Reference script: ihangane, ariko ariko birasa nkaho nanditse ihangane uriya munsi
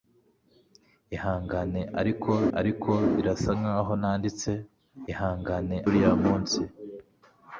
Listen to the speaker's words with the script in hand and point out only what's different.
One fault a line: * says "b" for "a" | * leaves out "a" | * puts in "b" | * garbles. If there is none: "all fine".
all fine